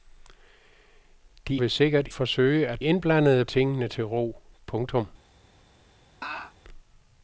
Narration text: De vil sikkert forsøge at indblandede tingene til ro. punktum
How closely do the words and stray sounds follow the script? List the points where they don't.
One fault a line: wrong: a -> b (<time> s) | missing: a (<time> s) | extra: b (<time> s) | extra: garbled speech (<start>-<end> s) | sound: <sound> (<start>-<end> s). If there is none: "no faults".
sound: laugh (6.2-6.5 s)